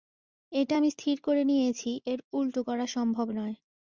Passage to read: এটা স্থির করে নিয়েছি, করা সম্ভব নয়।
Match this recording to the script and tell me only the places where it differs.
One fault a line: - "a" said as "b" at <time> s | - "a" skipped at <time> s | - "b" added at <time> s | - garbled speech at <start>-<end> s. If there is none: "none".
- "আমি" added at 0.8 s
- "এর উল্টো" added at 2.1 s